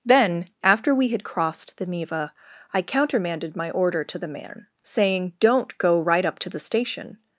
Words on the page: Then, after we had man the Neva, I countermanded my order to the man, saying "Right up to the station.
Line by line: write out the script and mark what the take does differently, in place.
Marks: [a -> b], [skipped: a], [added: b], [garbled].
Then, after we had [man -> crossed] the Neva, I countermanded my order to the man, saying [added: Don't go] "Right up to the station.